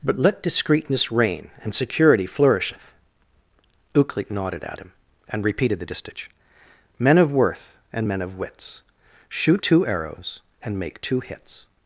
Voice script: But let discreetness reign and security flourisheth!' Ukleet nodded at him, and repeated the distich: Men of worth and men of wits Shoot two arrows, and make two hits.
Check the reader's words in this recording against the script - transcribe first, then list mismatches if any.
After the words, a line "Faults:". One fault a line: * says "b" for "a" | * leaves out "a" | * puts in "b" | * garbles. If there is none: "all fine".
But let discreetness reign and security flourisheth!' Ukleet nodded at him, and repeated the distich: Men of worth and men of wits Shoot two arrows, and make two hits.
Faults:
all fine